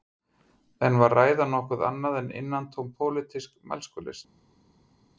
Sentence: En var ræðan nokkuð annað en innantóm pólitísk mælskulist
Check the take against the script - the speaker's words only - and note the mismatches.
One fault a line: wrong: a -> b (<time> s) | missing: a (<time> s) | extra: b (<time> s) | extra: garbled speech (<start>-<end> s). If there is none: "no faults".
no faults